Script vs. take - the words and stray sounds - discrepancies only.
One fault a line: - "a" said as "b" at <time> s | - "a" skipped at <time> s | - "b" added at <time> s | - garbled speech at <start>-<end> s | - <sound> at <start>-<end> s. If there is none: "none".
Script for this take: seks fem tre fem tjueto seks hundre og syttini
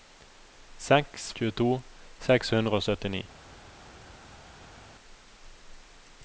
- "fem tre fem" skipped at 1.2 s